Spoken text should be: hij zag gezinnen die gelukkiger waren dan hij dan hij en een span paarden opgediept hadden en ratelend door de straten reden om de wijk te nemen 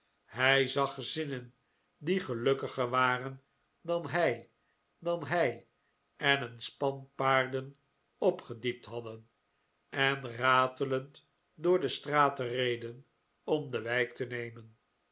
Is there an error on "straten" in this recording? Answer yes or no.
no